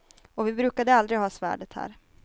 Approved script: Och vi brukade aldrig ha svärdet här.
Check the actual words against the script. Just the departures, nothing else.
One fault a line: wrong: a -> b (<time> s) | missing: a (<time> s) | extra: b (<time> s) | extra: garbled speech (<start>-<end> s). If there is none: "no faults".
no faults